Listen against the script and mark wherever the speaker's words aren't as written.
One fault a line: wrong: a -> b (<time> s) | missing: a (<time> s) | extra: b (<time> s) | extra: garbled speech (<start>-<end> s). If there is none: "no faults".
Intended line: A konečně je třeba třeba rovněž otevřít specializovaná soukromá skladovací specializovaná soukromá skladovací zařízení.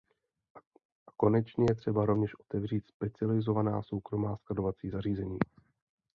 missing: třeba (2.0 s)
missing: specializovaná soukromá skladovací (4.9 s)